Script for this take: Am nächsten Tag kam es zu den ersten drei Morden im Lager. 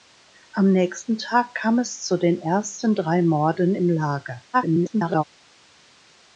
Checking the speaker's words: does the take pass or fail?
fail